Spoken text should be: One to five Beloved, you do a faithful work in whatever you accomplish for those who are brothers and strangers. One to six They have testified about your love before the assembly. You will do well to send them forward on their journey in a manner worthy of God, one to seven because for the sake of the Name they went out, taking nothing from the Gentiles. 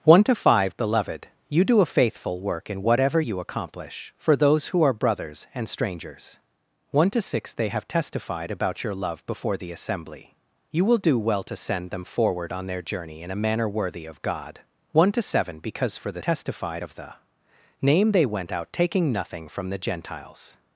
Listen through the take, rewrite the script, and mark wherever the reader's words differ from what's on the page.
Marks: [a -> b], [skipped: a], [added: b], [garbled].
One to five Beloved, you do a faithful work in whatever you accomplish for those who are brothers and strangers. One to six They have testified about your love before the assembly. You will do well to send them forward on their journey in a manner worthy of God, one to seven because for the [sake -> testified] of the Name they went out, taking nothing from the Gentiles.